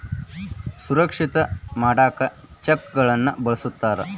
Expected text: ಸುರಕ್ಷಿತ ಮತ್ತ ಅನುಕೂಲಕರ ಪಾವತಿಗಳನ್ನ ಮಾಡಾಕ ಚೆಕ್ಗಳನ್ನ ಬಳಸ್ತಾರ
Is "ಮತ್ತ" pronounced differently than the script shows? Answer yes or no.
yes